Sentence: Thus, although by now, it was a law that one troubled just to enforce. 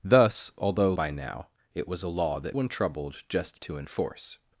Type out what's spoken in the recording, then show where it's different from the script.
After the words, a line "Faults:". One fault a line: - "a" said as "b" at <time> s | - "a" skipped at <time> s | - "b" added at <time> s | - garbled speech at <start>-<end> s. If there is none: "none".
Thus, although by now, it was a law that one troubled just to enforce.
Faults:
none